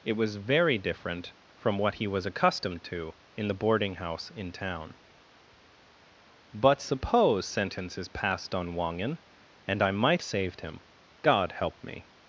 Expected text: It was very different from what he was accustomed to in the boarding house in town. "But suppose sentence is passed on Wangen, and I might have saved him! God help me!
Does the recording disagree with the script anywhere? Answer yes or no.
yes